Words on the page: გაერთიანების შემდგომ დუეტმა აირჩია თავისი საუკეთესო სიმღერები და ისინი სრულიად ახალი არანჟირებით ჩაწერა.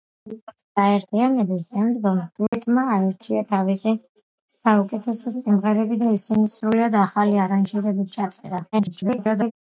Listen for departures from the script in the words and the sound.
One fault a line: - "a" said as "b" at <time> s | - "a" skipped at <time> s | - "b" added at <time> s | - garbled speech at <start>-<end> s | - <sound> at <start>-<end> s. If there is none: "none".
- dropout at 2.5-2.5 s
- garbled speech at 8.7-9.5 s